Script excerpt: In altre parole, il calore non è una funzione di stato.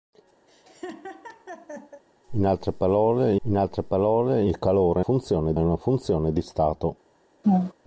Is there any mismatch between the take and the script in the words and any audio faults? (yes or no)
yes